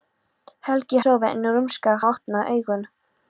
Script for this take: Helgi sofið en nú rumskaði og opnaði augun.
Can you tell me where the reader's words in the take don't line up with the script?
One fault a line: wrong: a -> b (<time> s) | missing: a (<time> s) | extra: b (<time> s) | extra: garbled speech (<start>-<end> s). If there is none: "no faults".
no faults